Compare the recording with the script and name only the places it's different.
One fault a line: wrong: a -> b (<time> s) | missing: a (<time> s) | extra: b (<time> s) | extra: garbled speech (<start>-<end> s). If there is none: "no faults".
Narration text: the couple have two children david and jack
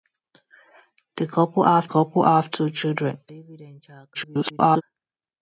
extra: couple have (1.8 s)
extra: garbled speech (4.1-4.8 s)